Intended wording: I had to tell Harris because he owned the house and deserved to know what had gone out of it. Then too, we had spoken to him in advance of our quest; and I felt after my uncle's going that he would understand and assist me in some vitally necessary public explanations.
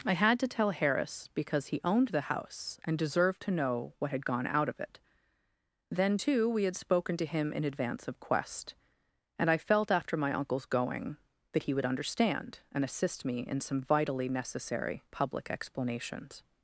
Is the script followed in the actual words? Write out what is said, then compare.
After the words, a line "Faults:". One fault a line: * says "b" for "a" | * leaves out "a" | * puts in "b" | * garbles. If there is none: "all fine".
I had to tell Harris because he owned the house and deserved to know what had gone out of it. Then too, we had spoken to him in advance of quest; and I felt after my uncle's going that he would understand and assist me in some vitally necessary public explanations.
Faults:
* leaves out "our"